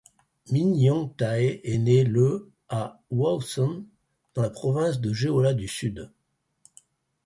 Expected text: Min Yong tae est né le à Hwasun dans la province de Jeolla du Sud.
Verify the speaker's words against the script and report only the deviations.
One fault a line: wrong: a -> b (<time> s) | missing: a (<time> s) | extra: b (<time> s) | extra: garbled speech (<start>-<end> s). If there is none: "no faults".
no faults